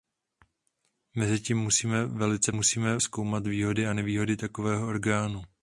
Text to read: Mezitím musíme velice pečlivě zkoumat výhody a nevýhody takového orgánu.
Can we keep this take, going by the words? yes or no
no